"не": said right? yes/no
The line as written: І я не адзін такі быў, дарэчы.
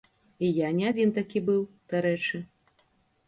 yes